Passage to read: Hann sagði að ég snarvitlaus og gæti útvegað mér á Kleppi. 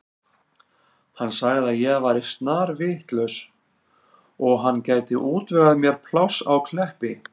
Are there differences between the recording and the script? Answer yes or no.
yes